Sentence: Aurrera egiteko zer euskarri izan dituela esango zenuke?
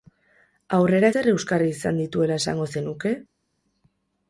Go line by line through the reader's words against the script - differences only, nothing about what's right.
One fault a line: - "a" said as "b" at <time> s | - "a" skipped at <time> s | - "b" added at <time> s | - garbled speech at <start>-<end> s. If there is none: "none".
- "egiteko" skipped at 1.1 s